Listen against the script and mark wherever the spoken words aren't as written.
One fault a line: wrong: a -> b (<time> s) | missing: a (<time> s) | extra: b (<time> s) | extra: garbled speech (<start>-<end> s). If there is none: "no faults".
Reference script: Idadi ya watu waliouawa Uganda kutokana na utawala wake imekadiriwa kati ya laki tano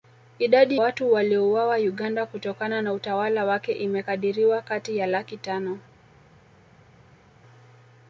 missing: ya (0.8 s)